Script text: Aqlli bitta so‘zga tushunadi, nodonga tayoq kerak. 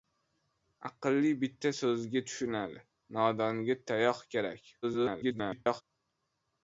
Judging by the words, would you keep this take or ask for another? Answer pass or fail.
fail